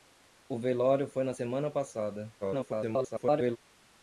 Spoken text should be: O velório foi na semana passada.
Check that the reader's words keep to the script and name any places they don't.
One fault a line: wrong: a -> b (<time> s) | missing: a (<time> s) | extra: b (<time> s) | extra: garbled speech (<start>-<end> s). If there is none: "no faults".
extra: garbled speech (2.4-3.6 s)